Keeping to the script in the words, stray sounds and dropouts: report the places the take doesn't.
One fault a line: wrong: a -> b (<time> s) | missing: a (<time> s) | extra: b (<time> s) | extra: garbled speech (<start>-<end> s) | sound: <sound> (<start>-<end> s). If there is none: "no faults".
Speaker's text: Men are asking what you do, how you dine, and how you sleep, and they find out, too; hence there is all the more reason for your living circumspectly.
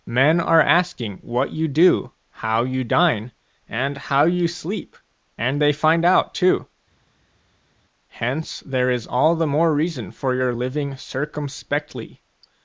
no faults